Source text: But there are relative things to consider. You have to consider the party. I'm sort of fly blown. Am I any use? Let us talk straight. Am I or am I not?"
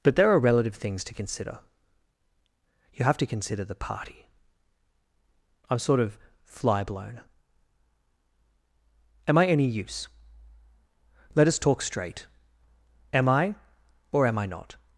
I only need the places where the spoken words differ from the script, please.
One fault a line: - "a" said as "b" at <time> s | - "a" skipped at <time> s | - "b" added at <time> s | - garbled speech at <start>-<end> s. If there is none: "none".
none